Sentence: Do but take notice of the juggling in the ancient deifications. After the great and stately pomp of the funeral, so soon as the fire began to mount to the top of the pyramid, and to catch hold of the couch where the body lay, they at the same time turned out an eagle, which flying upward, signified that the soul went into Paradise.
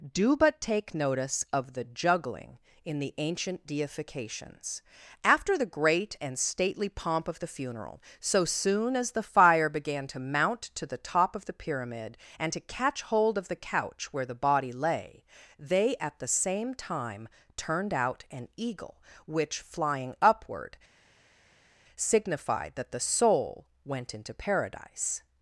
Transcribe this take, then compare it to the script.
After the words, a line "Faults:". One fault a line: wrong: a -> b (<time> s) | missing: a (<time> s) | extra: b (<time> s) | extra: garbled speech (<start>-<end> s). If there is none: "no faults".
Do but take notice of the juggling in the ancient deifications. After the great and stately pomp of the funeral, so soon as the fire began to mount to the top of the pyramid, and to catch hold of the couch where the body lay, they at the same time turned out an eagle, which flying upward, signified that the soul went into Paradise.
Faults:
no faults